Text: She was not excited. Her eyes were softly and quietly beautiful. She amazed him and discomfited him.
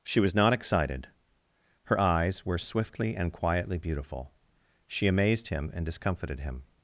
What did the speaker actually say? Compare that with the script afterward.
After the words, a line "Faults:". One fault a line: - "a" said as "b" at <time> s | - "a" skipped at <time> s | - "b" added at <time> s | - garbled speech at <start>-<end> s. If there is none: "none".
She was not excited. Her eyes were swiftly and quietly beautiful. She amazed him and discomfited him.
Faults:
- "softly" said as "swiftly" at 2.6 s